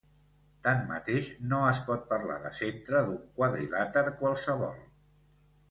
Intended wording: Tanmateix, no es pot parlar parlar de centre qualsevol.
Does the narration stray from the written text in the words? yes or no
yes